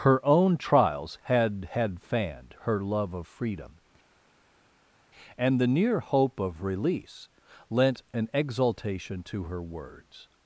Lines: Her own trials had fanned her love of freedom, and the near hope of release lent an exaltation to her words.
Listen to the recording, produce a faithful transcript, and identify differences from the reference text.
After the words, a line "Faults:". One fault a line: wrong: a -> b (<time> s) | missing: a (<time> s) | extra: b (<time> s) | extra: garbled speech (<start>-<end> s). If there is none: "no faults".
Her own trials had had fanned her love of freedom, and the near hope of release lent an exaltation to her words.
Faults:
extra: had (1.7 s)